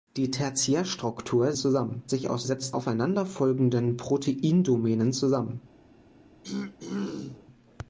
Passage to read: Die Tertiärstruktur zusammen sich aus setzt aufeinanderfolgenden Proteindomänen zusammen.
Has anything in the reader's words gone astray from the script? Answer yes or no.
no